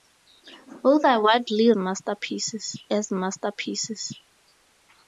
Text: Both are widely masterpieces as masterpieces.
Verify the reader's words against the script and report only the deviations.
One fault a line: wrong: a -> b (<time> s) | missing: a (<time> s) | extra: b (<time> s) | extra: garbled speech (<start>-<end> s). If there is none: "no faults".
no faults